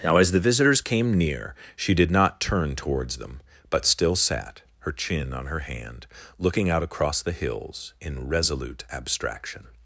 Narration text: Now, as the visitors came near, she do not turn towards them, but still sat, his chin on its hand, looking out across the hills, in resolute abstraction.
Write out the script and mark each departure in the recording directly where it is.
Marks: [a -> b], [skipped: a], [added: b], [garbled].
Now, as the visitors came near, she [do -> did] not turn towards them, but still sat, [his -> her] chin on [its -> her] hand, looking out across the hills, in resolute abstraction.